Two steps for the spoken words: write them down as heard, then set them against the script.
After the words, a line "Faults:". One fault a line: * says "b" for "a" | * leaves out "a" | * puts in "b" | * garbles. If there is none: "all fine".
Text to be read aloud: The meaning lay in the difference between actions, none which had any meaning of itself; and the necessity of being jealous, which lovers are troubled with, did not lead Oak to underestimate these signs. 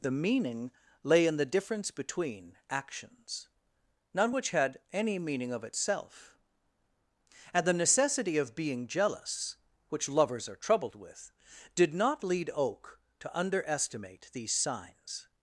The meaning lay in the difference between actions, none which had any meaning of itself; and the necessity of being jealous, which lovers are troubled with, did not lead Oak to underestimate these signs.
Faults:
all fine